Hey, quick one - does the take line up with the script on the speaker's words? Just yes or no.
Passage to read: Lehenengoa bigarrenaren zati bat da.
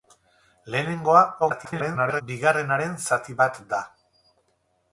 no